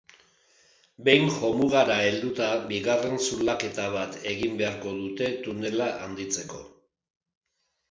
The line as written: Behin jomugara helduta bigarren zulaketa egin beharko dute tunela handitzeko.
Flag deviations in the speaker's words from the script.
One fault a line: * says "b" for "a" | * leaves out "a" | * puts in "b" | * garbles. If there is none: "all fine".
* puts in "bat"